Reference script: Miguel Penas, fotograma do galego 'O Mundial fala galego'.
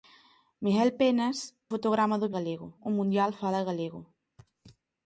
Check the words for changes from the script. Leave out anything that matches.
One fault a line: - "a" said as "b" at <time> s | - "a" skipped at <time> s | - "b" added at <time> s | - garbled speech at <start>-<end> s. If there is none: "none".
none